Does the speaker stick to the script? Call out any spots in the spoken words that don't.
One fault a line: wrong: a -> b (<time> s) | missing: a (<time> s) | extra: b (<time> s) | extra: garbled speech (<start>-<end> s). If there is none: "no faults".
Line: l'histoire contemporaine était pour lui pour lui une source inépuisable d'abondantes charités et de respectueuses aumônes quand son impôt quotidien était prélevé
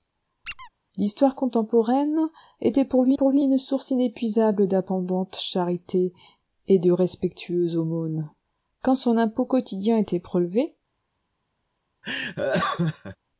no faults